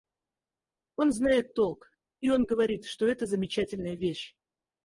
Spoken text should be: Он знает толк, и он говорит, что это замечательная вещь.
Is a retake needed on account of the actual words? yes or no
no